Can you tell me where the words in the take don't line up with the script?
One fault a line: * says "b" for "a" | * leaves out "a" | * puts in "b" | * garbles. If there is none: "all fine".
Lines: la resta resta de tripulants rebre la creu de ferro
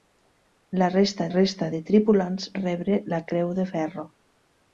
all fine